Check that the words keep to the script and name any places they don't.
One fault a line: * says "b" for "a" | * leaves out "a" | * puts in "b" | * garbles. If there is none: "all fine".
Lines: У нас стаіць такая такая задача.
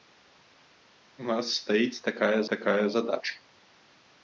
all fine